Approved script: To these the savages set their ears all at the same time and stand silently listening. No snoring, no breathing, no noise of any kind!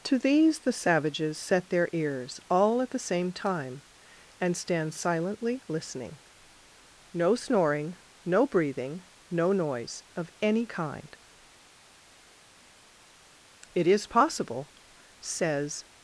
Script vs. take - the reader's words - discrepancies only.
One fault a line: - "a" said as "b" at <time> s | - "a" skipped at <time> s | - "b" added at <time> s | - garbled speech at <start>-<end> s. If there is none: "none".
- "It is possible says" added at 13.7 s